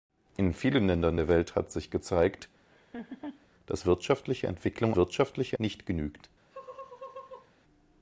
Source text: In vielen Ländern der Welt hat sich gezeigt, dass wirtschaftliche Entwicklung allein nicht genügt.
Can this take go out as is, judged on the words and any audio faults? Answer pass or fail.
fail